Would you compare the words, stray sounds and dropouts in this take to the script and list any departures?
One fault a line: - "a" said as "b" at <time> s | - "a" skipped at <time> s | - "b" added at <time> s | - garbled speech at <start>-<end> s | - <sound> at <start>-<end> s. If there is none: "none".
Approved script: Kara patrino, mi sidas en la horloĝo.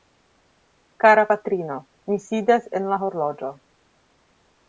none